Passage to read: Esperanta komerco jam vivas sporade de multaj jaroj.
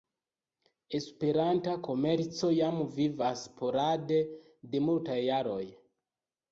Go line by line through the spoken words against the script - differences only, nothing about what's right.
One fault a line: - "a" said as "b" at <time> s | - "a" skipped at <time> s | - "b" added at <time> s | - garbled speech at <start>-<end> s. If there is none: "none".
none